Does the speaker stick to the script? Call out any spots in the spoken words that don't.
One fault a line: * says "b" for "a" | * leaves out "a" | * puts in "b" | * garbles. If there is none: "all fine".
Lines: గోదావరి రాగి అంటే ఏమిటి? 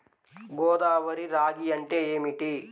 all fine